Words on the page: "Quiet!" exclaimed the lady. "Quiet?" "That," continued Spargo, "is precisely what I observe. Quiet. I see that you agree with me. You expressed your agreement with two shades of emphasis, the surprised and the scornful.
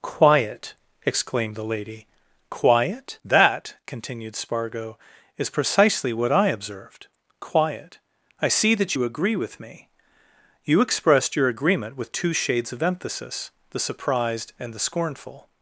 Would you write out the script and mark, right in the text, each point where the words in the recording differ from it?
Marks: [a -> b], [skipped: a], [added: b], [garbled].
"Quiet!" exclaimed the lady. "Quiet?" "That," continued Spargo, "is precisely what I [observe. -> observed] Quiet. I see that you agree with me. You expressed your agreement with two shades of emphasis, the surprised and the scornful.